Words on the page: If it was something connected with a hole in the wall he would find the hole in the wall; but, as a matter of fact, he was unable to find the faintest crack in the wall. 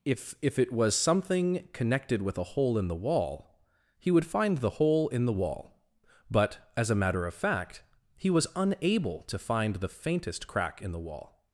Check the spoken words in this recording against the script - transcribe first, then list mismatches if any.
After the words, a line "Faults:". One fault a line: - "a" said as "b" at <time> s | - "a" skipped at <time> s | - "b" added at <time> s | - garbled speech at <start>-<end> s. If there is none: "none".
If if it was something connected with a hole in the wall he would find the hole in the wall; but, as a matter of fact, he was unable to find the faintest crack in the wall.
Faults:
- "if" added at 0.4 s